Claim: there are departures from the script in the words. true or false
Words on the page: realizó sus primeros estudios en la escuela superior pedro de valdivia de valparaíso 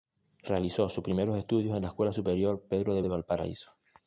true